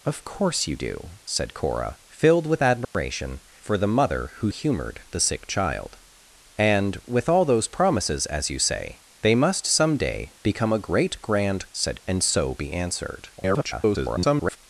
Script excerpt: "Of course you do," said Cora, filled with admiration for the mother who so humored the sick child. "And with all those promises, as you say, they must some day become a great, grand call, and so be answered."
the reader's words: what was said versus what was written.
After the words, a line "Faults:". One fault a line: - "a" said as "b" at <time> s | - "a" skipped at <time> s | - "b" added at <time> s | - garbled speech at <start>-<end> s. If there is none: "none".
"Of course you do," said Cora, filled with admiration for the mother who humored the sick child. "And with all those promises, as you say, they must some day become a great, grand said, and so be answered." [garbled]
Faults:
- "so" skipped at 4.5 s
- "call" said as "said" at 11.7 s
- garbled speech at 13.4-14.6 s